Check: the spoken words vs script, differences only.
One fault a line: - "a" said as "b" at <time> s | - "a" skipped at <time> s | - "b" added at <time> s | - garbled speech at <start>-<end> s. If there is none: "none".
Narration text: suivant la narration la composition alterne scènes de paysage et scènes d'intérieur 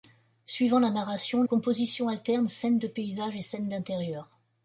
- "la" skipped at 1.4 s